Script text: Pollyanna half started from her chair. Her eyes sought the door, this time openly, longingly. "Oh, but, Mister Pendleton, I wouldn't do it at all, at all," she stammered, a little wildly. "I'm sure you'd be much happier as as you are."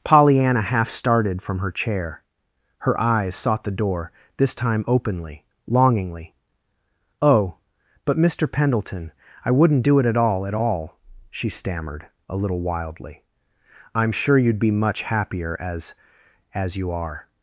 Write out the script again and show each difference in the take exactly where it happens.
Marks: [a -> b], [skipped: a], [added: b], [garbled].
Pollyanna half started from her chair. Her eyes sought the door, this time openly, longingly. "Oh, but, Mister Pendleton, I wouldn't do it at all, at all," she stammered, a little wildly. "I'm sure you'd be much happier as as you are."